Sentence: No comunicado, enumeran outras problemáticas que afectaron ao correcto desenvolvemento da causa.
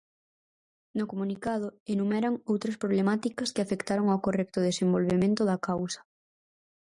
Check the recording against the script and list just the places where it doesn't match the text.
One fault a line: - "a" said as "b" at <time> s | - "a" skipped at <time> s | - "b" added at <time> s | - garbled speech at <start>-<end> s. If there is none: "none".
none